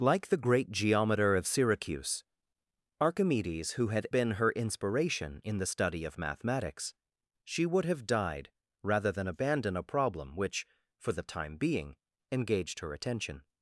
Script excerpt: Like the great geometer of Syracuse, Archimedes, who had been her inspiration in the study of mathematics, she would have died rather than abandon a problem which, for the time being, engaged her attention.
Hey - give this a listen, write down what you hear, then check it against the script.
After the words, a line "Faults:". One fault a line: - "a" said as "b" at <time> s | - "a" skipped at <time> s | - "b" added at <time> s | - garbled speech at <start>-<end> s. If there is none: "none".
Like the great geometer of Syracuse, Archimedes, who had been her inspiration in the study of mathematics, she would have died rather than abandon a problem which, for the time being, engaged her attention.
Faults:
none